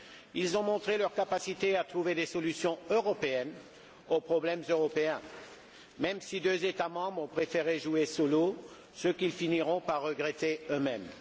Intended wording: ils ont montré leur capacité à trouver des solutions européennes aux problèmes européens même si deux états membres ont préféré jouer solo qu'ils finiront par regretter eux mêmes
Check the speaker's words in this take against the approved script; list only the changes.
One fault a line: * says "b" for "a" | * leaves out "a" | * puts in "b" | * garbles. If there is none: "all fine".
* puts in "ce"